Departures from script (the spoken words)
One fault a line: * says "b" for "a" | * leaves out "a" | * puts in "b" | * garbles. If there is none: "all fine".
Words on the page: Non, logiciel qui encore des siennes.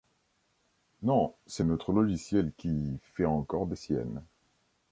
* puts in "c'est notre"
* puts in "fait"